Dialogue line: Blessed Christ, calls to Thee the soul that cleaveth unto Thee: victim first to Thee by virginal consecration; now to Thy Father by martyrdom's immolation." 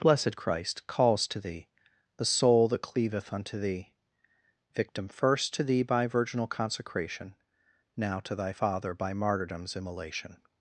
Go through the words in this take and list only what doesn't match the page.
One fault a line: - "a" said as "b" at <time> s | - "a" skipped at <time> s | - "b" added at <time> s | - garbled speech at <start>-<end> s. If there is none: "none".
none